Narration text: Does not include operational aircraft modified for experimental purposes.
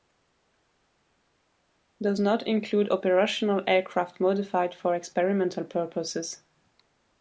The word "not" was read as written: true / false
true